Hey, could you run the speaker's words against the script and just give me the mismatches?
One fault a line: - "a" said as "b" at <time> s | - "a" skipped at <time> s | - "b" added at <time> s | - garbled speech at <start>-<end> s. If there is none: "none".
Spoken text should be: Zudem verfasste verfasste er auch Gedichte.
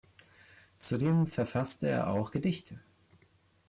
- "verfasste" skipped at 1.9 s